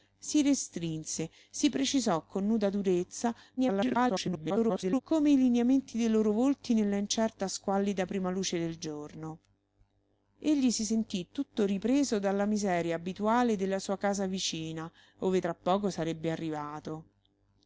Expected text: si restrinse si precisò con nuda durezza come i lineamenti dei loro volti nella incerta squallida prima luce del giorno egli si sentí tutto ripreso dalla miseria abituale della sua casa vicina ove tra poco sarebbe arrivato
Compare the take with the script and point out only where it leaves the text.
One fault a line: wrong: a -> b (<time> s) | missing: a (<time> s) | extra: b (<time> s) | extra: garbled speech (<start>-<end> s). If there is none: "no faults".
extra: garbled speech (3.6-5.0 s)